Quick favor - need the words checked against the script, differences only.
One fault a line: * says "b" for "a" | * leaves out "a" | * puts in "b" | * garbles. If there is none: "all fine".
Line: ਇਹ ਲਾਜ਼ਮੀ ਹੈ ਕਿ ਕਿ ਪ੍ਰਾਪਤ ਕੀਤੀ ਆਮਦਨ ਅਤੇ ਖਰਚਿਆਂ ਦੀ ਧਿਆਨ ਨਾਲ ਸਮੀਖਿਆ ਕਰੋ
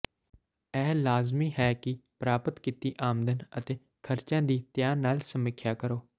* leaves out "ਕਿ"